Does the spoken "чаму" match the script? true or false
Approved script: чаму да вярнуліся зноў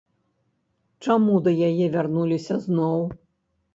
true